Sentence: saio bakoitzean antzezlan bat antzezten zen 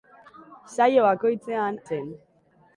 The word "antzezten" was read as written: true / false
false